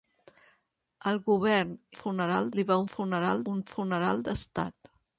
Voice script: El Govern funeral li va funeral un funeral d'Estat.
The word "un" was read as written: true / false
true